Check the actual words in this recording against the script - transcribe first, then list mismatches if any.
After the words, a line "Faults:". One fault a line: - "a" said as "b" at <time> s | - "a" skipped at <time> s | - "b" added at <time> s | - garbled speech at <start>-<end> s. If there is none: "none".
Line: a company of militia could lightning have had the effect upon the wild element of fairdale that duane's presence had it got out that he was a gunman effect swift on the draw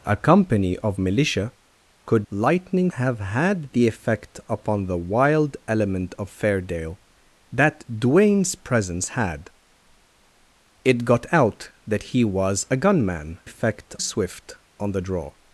a company of militia could lightning have had the effect upon the wild element of fairdale that duane's presence had it got out that he was a gunman effect swift on the draw
Faults:
none